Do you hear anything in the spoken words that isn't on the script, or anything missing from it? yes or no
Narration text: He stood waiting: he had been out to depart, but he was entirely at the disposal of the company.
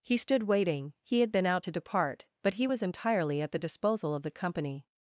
no